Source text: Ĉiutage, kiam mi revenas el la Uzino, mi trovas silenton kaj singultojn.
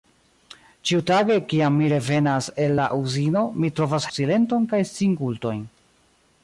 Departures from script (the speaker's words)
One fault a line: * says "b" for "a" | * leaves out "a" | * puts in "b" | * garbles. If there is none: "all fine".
all fine